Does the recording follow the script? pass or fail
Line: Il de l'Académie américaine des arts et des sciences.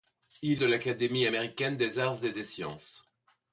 pass